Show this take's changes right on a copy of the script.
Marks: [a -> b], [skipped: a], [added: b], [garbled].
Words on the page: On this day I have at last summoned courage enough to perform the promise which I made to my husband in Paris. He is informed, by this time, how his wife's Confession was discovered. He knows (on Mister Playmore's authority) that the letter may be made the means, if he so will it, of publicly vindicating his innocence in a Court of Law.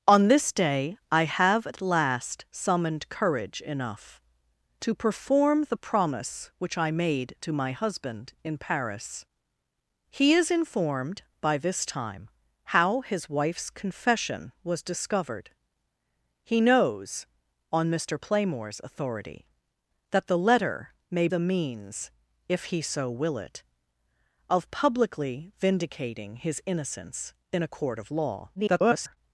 On this day I have at last summoned courage enough to perform the promise which I made to my husband in Paris. He is informed, by this time, how his wife's Confession was discovered. He knows (on Mister Playmore's authority) that the letter may [skipped: be made] the means, if he so will it, of publicly vindicating his innocence in a Court of Law. [garbled]